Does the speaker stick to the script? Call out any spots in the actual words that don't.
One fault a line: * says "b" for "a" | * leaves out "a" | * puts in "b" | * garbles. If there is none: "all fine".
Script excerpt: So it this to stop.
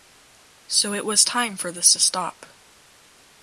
* puts in "was time for"